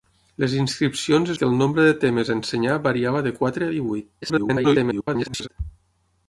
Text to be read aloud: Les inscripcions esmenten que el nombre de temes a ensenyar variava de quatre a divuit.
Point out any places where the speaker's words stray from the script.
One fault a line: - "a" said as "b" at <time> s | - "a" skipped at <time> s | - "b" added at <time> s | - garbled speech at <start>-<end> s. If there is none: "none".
- "esmenten" skipped at 1.3 s
- garbled speech at 4.2-5.5 s